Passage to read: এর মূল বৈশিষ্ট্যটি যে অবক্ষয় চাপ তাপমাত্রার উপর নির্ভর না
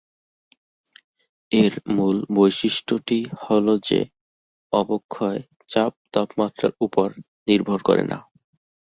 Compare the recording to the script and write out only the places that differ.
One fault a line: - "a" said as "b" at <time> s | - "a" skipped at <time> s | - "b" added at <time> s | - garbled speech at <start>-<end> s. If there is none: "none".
- "হ'ল" added at 3.4 s
- "করে" added at 7.8 s